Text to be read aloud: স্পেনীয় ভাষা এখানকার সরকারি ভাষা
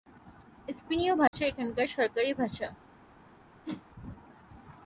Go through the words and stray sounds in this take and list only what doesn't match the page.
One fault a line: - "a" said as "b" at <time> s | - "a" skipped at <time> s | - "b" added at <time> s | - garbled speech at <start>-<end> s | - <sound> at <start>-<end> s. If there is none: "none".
- dropout at 1.3-1.3 s
- whoosh at 3.6-3.9 s